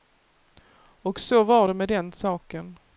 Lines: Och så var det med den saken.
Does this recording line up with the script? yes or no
yes